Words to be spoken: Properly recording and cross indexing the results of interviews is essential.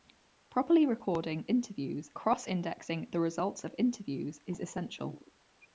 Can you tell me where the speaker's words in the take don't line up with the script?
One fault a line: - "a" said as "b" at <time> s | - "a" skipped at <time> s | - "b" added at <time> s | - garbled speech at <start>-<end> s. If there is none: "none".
- "and" said as "interviews" at 1.5 s